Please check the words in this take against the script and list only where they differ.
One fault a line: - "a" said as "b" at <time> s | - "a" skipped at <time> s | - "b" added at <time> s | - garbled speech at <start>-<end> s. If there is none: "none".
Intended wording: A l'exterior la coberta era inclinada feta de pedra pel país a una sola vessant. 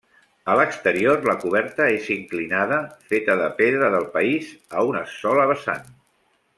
- "era" said as "és" at 2.0 s
- "pel" said as "del" at 4.0 s